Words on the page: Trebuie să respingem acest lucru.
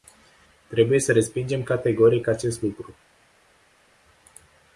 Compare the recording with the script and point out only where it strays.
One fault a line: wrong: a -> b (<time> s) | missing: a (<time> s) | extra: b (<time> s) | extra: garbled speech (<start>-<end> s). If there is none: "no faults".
extra: categoric (1.6 s)